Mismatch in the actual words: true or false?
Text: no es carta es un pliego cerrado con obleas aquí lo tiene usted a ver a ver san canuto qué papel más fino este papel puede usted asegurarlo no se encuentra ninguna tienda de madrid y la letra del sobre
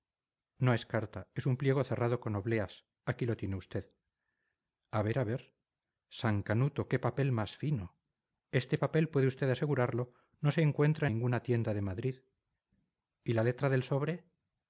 false